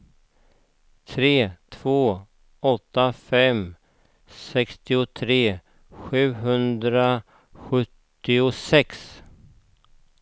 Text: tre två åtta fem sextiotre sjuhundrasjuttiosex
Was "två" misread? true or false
false